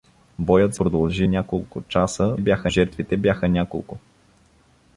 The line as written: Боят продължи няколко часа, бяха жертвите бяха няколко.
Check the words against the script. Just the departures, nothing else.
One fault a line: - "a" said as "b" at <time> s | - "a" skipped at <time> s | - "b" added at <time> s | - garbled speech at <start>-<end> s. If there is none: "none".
none